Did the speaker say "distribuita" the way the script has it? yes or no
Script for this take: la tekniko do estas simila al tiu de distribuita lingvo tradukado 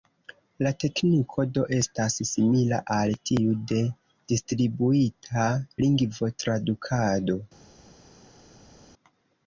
yes